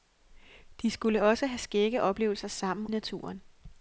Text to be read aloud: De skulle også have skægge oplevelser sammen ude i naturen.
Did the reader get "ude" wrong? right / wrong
wrong